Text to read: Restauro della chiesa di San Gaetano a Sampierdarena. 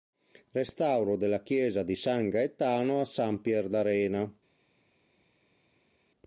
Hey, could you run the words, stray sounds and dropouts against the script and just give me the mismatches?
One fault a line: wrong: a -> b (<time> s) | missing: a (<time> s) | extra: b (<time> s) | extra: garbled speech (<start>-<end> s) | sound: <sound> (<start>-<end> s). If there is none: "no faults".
no faults